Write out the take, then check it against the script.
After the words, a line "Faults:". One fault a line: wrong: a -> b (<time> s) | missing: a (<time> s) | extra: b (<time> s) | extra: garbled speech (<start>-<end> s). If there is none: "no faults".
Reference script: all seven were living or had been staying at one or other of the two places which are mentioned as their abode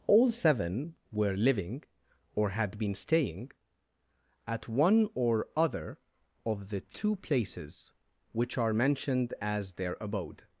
all seven were living or had been staying at one or other of the two places which are mentioned as their abode
Faults:
no faults